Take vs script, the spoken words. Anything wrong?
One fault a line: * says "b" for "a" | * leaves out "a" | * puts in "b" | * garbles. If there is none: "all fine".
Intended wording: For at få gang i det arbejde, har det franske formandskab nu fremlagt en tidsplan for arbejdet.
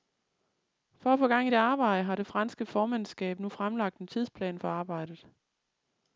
all fine